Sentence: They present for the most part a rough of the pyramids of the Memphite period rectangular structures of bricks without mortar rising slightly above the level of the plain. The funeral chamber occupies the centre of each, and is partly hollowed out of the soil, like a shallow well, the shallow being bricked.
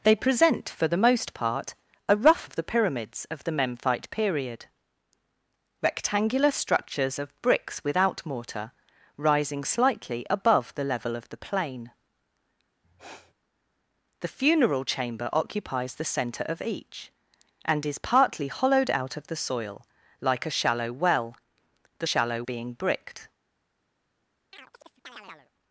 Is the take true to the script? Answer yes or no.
yes